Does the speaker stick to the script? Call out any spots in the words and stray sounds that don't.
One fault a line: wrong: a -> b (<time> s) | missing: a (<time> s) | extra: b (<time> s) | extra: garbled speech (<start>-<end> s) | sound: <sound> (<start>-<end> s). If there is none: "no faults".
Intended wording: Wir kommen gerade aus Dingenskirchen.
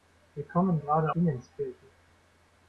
missing: aus (1.1 s)